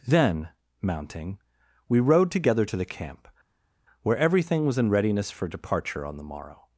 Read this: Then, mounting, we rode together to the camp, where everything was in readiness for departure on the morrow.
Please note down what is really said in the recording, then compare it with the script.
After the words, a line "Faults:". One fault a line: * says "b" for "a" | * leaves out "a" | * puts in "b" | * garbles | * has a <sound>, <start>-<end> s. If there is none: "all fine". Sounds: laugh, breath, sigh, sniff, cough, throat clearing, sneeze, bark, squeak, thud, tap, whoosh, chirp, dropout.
Then, mounting, we rode together to the camp, where everything was in readiness for departure on the morrow.
Faults:
all fine